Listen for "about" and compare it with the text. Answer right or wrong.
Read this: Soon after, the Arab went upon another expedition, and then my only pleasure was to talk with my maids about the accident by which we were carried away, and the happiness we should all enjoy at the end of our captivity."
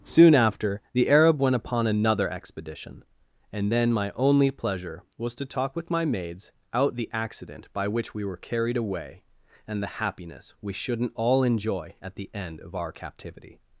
wrong